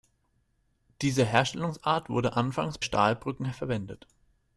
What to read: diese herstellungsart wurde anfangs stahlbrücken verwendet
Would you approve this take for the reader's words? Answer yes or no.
yes